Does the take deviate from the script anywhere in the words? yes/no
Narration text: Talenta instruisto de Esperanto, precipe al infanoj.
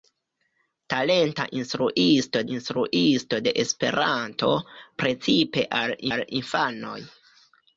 yes